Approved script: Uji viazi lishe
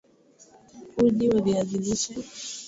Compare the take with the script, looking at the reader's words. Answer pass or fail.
fail